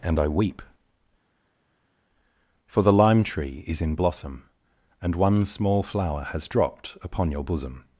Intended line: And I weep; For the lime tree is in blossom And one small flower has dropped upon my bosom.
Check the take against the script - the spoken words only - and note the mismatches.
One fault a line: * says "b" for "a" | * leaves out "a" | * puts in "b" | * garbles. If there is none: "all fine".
* says "your" for "my"